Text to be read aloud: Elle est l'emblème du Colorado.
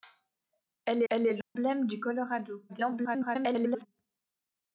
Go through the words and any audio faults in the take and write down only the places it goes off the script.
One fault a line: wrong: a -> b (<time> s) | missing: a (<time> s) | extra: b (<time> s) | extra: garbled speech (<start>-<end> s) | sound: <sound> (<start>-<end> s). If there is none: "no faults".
extra: elle (1.1 s)
sound: dropout (1.4-1.6 s)
extra: garbled speech (2.7-3.9 s)